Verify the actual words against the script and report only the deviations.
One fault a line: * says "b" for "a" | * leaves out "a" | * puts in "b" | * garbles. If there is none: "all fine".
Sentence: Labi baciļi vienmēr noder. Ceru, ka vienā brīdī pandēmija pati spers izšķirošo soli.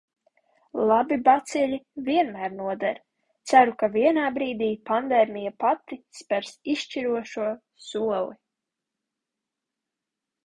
all fine